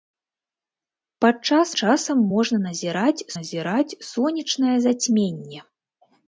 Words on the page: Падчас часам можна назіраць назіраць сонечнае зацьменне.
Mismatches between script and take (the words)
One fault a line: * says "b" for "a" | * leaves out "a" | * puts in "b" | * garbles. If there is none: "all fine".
all fine